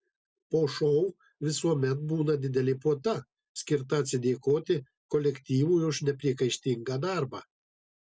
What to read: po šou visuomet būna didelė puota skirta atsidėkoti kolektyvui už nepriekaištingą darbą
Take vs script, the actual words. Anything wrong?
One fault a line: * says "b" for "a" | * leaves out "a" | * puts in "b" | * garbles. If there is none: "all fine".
all fine